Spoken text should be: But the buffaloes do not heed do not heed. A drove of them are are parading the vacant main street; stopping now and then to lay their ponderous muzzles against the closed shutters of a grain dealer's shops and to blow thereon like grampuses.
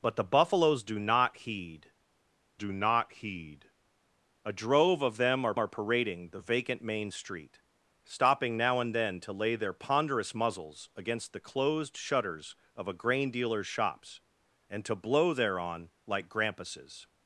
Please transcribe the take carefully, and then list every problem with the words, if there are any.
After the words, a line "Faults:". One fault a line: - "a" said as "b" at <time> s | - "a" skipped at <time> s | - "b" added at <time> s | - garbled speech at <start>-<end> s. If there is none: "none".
But the buffaloes do not heed do not heed. A drove of them are are parading the vacant main street; stopping now and then to lay their ponderous muzzles against the closed shutters of a grain dealer's shops and to blow thereon like grampuses.
Faults:
none